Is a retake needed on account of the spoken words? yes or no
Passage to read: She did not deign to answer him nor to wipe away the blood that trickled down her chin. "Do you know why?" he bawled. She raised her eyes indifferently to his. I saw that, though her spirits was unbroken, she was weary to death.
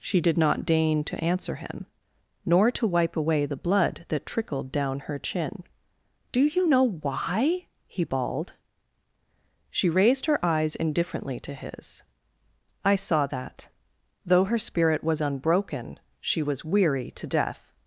yes